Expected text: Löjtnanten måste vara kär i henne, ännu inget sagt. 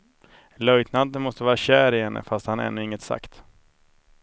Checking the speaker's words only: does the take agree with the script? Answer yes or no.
no